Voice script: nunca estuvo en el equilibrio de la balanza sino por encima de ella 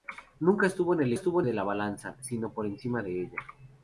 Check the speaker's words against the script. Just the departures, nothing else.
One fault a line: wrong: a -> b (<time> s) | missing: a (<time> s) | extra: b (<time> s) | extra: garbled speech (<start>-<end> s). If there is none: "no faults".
wrong: equilibrio -> estuvo (1.1 s)